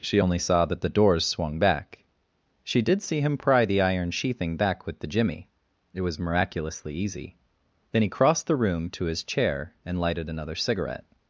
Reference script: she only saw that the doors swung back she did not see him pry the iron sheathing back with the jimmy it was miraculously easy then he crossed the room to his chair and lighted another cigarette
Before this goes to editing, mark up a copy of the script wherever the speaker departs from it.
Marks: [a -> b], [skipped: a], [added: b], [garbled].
she only saw that the doors swung back she did [skipped: not] see him pry the iron sheathing back with the jimmy it was miraculously easy then he crossed the room to his chair and lighted another cigarette